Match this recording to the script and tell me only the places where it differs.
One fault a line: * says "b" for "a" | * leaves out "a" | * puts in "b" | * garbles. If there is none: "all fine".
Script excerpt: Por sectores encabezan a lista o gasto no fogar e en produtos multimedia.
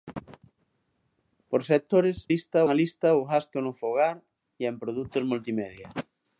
* says "lista" for "encabezan"